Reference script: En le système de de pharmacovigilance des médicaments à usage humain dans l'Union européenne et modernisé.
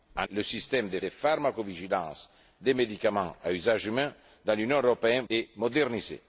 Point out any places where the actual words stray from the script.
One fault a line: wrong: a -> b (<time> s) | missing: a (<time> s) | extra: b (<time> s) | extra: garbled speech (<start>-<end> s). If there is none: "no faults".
no faults